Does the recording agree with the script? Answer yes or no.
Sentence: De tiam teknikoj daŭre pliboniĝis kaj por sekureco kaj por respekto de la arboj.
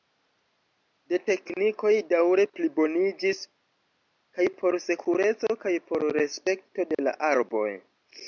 no